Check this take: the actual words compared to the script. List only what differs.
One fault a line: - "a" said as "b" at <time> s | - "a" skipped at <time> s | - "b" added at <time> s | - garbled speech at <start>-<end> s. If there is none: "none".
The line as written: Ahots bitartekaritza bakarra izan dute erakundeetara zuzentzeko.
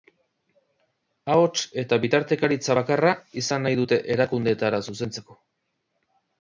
- "eta" added at 1.8 s
- "nahi" added at 3.7 s